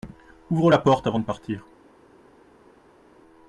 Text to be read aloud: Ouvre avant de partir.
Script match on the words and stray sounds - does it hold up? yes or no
no